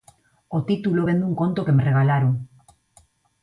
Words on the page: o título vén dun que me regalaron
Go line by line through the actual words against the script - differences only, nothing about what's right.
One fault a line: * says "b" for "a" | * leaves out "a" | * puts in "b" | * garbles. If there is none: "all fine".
* puts in "conto"